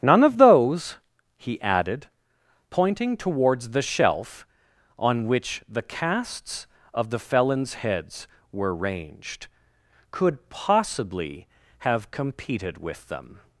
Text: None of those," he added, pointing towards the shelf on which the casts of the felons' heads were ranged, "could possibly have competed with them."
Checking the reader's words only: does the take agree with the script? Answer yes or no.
yes